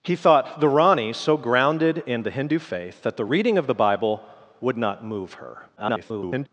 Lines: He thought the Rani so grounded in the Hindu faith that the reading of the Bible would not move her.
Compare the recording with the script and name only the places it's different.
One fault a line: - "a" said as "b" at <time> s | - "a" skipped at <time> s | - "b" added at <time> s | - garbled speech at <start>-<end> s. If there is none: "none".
- garbled speech at 5.8-6.5 s